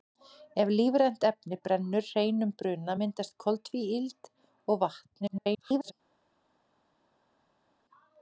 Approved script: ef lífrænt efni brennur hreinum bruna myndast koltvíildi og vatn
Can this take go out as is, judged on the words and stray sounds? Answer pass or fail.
fail